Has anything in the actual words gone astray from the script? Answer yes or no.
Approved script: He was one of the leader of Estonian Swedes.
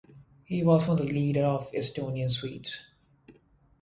yes